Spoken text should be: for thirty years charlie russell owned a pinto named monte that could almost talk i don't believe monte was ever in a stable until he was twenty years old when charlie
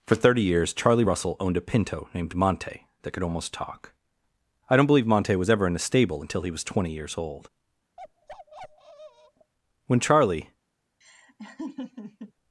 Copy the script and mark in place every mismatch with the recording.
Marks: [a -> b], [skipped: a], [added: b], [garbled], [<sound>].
for thirty years charlie russell owned a pinto named monte that could almost talk i don't believe monte was ever in a stable until he was twenty years old [bark] when charlie [laugh]